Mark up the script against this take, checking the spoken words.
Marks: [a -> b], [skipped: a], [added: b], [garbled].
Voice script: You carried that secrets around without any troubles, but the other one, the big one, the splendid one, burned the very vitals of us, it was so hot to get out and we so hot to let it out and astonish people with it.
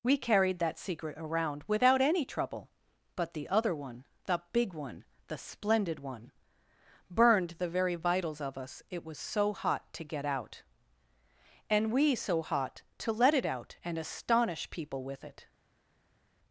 [You -> We] carried that [secrets -> secret] around without any [troubles, -> trouble] but the other one, the big one, the splendid one, burned the very vitals of us, it was so hot to get out and we so hot to let it out and astonish people with it.